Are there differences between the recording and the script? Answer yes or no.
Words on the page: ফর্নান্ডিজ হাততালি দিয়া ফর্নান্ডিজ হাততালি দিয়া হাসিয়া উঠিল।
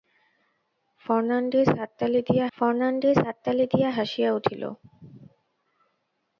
no